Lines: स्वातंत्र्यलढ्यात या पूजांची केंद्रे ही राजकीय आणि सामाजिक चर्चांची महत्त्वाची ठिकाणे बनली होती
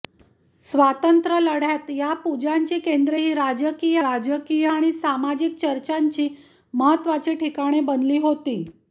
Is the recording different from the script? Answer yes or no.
yes